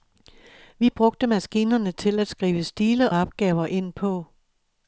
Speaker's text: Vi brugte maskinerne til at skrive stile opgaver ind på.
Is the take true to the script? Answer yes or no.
yes